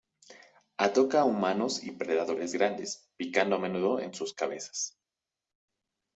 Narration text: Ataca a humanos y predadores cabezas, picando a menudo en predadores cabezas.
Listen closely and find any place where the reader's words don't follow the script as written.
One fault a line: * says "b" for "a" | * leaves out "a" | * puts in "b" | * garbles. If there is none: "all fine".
* says "grandes" for "cabezas"
* says "sus" for "predadores"